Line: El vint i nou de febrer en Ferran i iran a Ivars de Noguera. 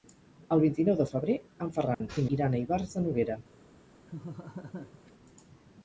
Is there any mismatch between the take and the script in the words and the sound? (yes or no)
yes